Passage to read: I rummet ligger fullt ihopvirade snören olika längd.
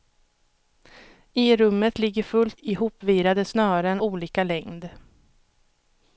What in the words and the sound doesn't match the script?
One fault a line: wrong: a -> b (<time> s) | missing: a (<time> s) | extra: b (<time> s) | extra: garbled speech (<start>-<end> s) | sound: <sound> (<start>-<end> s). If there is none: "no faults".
no faults